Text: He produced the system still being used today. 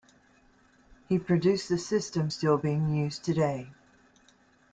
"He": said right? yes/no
yes